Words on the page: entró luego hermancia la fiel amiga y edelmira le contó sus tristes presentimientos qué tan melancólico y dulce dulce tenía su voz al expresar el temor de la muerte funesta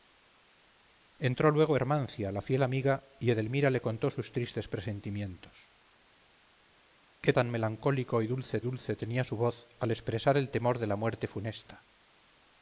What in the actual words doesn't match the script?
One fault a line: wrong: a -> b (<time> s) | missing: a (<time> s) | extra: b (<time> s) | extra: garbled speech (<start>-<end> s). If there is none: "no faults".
no faults